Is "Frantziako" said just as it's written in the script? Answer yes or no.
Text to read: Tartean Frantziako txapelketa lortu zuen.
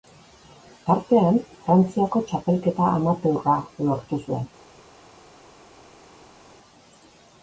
yes